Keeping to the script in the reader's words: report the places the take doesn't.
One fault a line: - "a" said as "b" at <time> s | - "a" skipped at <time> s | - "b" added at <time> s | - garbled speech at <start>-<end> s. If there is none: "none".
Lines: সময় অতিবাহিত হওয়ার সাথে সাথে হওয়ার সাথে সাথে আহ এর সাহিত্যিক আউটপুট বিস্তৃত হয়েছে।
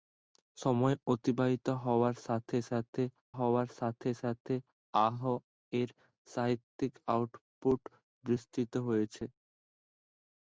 none